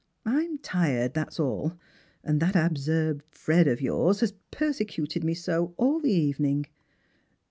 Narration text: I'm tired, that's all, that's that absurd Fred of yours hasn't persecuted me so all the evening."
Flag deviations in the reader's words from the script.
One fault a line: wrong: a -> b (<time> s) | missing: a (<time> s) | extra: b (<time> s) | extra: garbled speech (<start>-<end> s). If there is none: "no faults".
wrong: that's -> and (2.2 s)
wrong: hasn't -> has (4.2 s)